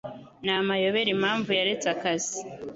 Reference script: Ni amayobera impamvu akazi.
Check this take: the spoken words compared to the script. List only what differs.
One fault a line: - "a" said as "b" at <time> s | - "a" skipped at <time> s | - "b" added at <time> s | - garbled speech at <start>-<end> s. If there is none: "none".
- "yaretse" added at 1.6 s